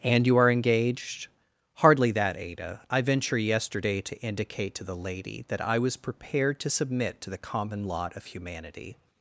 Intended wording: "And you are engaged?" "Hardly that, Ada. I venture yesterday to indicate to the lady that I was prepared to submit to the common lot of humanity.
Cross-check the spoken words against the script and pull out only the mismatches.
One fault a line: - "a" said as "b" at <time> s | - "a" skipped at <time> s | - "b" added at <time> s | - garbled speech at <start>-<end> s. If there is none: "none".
none